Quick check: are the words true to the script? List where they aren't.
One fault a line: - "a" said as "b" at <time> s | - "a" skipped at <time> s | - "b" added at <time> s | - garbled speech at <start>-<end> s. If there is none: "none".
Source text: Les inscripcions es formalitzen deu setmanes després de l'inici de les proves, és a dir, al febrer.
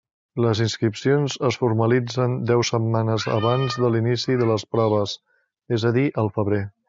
- "després" said as "abans" at 3.4 s